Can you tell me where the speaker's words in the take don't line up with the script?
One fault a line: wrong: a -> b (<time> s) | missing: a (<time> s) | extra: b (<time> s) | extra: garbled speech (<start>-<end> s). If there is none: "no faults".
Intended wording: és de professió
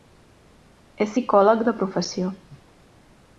extra: psicòleg (1.1 s)